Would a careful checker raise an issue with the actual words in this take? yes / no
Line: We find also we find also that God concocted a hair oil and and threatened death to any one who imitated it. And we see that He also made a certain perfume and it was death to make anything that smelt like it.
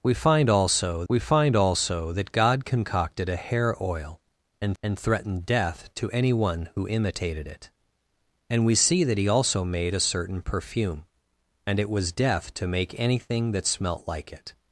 no